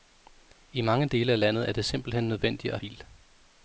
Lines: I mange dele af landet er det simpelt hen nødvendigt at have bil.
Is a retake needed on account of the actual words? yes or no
yes